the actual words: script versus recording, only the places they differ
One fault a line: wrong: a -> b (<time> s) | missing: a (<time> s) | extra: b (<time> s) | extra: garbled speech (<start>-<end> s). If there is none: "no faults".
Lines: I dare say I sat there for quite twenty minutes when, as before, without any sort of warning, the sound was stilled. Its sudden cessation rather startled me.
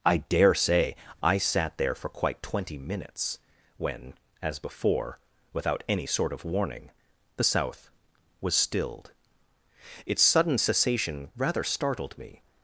wrong: sound -> south (7.4 s)